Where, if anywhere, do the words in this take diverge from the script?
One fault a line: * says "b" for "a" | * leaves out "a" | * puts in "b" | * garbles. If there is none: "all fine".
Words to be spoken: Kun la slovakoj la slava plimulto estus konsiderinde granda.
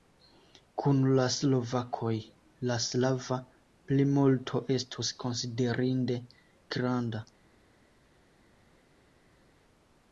all fine